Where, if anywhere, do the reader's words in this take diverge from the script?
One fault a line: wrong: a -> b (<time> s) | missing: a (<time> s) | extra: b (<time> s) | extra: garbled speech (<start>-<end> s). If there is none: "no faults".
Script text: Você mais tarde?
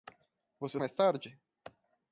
no faults